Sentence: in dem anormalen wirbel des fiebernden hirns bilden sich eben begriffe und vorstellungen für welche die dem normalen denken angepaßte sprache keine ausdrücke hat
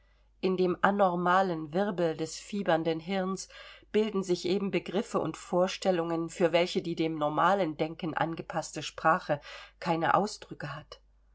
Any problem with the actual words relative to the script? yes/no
no